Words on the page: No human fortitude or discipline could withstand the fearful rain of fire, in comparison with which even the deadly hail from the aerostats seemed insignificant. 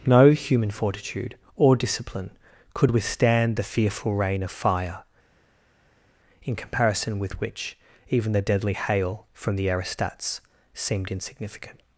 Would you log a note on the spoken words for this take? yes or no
no